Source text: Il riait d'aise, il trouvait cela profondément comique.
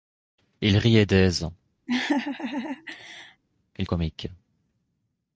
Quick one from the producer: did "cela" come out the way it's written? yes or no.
no